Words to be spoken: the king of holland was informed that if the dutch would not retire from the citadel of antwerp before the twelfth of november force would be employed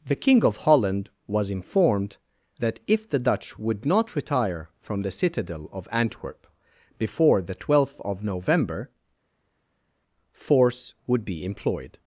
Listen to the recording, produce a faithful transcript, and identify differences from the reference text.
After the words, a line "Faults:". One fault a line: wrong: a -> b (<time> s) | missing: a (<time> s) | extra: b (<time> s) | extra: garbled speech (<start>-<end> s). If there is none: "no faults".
the king of holland was informed that if the dutch would not retire from the citadel of antwerp before the twelfth of november force would be employed
Faults:
no faults